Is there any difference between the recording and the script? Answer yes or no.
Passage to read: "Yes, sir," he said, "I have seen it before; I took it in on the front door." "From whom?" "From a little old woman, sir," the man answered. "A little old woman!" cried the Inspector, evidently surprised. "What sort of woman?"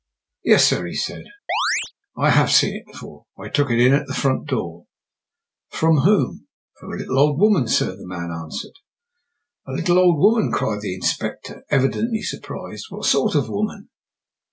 yes